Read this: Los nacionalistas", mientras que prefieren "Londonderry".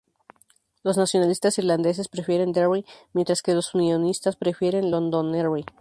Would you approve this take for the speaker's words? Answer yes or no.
no